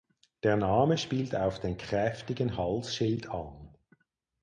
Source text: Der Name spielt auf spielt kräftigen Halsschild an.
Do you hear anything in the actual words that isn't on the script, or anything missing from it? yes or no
yes